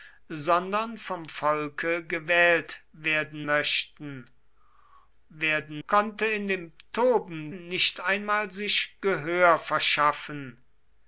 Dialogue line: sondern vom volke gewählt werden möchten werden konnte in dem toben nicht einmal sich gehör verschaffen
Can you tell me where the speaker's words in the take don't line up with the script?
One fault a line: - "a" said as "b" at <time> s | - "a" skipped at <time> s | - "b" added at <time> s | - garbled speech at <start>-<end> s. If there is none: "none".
none